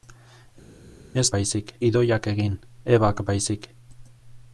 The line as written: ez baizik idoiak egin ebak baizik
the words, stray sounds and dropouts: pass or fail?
pass